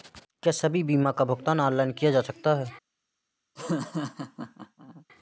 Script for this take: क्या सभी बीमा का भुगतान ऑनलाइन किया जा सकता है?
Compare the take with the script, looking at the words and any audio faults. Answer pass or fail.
fail